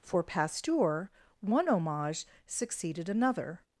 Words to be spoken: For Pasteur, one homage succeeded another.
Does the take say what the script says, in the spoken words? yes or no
yes